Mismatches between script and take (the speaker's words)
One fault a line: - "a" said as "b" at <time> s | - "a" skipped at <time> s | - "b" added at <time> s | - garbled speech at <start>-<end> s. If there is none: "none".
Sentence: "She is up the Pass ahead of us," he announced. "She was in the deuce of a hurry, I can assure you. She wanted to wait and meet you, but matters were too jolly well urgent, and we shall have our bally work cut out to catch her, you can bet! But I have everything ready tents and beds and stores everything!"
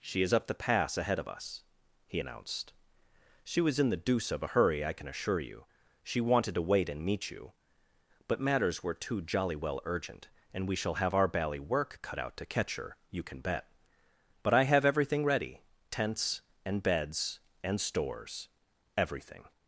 none